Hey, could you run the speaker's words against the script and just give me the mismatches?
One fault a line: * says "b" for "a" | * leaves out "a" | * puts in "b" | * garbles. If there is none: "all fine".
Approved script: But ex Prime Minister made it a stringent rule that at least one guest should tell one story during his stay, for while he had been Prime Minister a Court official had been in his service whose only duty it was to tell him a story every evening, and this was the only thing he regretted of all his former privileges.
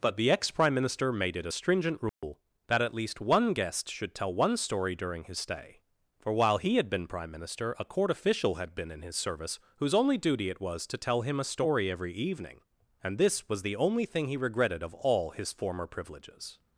* puts in "the"